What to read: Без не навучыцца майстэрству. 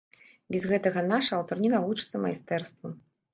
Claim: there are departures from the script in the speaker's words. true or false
true